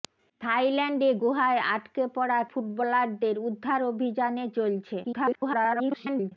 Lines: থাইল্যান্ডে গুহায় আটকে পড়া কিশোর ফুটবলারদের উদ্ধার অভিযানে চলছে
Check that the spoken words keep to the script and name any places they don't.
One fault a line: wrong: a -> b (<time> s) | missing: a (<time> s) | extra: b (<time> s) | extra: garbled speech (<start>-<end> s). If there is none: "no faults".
missing: কিশোর (2.4 s)
extra: garbled speech (5.0-6.3 s)